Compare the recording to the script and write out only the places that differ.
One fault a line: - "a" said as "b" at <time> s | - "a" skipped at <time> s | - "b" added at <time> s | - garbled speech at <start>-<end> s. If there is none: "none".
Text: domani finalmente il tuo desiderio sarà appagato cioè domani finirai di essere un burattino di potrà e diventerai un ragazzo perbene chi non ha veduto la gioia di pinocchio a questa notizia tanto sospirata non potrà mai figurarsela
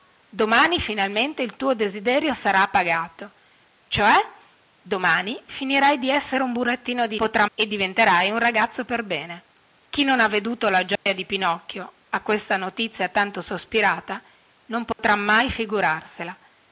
none